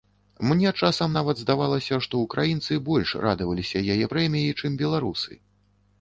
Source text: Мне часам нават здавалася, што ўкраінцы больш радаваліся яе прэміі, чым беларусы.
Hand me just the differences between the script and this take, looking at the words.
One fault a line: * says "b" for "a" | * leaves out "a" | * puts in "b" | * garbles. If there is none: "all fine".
all fine